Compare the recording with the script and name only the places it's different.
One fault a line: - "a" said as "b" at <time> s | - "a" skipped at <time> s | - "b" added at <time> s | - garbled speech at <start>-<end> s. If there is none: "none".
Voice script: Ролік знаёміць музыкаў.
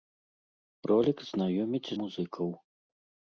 none